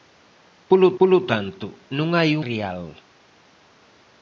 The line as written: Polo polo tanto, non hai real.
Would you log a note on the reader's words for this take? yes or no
no